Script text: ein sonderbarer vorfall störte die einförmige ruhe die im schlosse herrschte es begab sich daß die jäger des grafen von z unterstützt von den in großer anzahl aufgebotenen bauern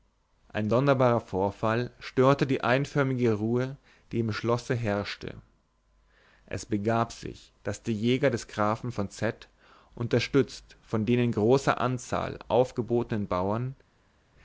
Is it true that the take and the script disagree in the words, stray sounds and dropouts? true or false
false